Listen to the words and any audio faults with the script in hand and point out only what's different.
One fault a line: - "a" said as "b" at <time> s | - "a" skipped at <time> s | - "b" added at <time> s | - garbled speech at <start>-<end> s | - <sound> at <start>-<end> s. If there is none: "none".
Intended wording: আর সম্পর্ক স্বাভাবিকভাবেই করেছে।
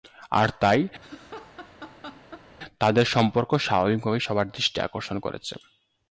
- "তাই তাদের" added at 0.6 s
- laugh at 1.0-2.5 s
- "সবার দৃষ্টি আকর্ষণ" added at 4.2 s